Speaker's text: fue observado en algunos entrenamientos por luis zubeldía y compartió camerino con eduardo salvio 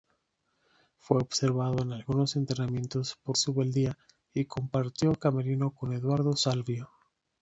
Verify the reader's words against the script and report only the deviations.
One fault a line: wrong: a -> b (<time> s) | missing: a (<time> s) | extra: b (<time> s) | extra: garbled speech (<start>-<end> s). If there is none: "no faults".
missing: luis (3.4 s)